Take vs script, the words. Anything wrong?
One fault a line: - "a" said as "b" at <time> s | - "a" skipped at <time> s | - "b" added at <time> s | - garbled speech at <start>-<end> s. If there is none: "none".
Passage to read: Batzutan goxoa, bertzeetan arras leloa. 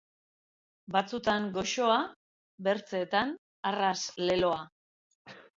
none